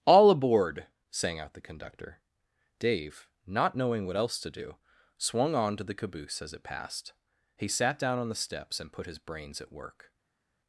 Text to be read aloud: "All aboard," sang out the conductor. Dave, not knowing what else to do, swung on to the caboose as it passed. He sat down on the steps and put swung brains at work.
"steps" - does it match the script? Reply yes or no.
yes